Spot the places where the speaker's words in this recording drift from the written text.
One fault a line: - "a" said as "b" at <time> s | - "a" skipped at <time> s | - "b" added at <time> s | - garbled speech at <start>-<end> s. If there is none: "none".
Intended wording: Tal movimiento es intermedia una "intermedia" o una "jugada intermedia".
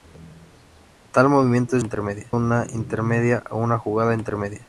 none